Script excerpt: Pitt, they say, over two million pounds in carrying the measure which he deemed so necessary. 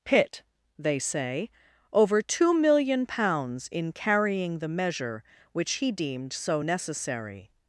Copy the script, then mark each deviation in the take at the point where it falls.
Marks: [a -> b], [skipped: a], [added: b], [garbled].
Pitt, they say, over two million pounds in carrying the measure which he deemed so necessary.